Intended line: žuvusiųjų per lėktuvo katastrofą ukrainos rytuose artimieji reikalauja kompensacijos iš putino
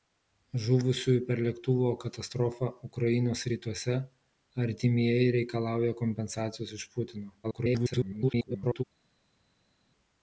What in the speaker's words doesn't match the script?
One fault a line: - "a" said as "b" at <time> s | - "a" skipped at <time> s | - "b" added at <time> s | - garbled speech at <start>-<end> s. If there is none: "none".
- garbled speech at 7.4-8.8 s